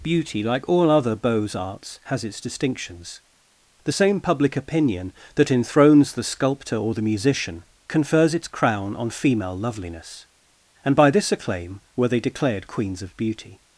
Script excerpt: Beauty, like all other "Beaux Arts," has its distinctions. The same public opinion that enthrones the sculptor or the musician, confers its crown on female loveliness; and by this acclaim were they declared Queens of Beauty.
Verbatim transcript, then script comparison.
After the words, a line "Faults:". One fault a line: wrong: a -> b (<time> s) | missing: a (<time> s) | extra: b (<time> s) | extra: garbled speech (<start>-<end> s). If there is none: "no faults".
Beauty, like all other "Beaux Arts," has its distinctions. The same public opinion that enthrones the sculptor or the musician, confers its crown on female loveliness; and by this acclaim were they declared Queens of Beauty.
Faults:
no faults